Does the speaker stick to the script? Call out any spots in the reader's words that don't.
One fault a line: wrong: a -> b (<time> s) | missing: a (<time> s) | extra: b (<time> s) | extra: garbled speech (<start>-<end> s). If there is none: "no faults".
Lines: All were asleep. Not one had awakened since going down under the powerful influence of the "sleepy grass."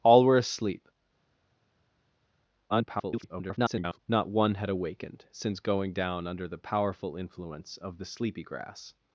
extra: garbled speech (2.7-4.0 s)